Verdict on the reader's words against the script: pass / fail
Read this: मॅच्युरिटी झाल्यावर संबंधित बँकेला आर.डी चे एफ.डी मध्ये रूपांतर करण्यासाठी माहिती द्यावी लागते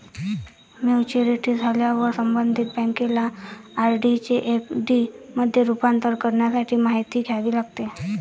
pass